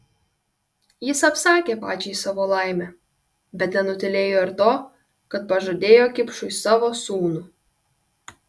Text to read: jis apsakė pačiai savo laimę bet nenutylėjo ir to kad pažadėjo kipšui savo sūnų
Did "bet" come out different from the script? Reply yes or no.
no